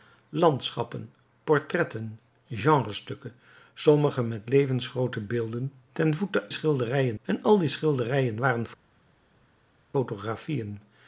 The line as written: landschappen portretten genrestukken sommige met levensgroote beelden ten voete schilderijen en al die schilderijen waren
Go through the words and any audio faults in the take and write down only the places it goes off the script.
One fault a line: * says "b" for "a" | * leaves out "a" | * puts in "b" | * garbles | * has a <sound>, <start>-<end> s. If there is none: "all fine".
all fine